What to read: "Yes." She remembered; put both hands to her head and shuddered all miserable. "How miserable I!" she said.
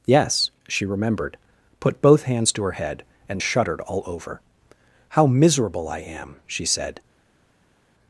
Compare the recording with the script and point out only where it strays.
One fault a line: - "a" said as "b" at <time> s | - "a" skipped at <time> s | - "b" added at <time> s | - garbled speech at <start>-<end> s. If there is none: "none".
- "miserable" said as "over" at 4.1 s
- "am" added at 6.0 s